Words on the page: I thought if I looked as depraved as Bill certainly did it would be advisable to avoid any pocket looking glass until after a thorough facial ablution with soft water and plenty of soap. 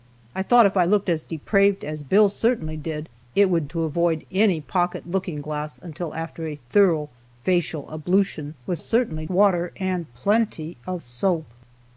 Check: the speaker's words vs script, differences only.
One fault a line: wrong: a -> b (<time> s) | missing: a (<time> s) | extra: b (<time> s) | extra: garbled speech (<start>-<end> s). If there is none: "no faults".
missing: be advisable (3.7 s)
wrong: soft -> certainly (8.8 s)